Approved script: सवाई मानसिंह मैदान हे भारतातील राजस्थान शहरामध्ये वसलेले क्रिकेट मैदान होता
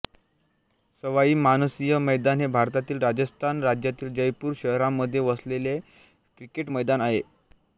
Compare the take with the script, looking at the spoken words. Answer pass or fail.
fail